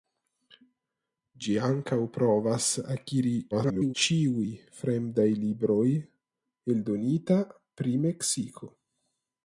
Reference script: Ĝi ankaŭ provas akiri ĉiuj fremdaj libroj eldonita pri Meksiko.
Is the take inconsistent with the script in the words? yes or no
yes